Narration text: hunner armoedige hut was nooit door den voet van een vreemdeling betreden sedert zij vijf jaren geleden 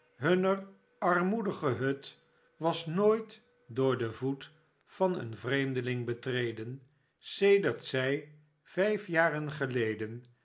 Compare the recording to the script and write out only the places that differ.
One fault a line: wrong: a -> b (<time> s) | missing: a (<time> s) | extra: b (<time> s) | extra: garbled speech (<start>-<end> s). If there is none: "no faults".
no faults